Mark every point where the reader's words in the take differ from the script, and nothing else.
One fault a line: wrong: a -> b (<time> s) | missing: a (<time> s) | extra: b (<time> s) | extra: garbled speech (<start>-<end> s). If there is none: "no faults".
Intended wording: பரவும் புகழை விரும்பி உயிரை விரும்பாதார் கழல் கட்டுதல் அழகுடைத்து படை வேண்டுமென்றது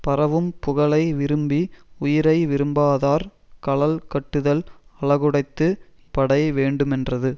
no faults